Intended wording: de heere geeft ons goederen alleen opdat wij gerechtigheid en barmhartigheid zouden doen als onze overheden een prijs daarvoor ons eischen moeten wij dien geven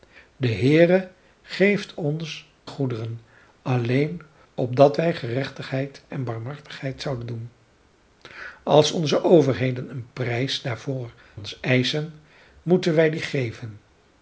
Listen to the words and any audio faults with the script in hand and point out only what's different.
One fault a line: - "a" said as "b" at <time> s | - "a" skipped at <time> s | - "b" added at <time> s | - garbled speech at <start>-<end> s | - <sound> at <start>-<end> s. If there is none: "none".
none